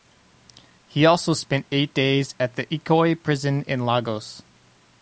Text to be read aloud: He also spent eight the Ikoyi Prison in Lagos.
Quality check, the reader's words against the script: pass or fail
fail